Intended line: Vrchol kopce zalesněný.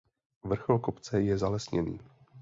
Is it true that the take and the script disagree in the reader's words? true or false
true